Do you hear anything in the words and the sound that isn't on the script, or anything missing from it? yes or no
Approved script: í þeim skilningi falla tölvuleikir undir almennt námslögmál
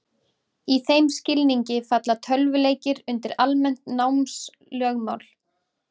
no